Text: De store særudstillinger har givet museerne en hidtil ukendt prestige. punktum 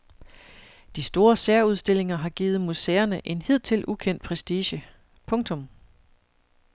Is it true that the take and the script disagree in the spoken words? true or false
false